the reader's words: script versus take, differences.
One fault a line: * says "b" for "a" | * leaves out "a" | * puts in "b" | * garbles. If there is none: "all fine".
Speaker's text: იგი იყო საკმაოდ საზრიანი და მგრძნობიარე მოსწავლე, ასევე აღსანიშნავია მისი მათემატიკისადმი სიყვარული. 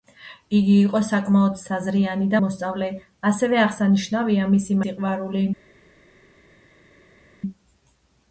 * leaves out "მგრძნობიარე"
* leaves out "მათემატიკისადმი"